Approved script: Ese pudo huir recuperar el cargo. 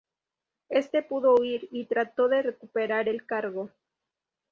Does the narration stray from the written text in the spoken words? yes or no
yes